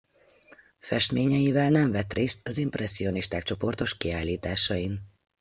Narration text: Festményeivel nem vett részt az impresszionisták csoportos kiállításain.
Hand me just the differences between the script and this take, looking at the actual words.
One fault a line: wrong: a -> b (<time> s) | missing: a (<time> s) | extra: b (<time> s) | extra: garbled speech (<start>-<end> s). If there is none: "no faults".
no faults